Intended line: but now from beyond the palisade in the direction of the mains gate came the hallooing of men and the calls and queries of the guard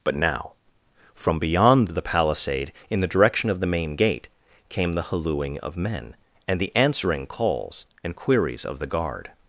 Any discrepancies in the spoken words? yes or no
yes